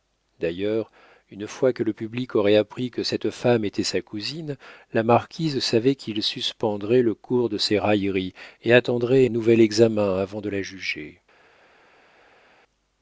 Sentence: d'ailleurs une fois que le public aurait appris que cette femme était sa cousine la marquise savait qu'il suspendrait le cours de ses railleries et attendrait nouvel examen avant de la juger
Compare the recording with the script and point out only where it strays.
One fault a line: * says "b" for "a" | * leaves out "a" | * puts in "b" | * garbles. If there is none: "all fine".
all fine